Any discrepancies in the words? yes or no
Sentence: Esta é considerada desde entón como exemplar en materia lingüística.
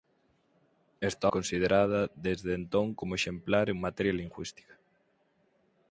no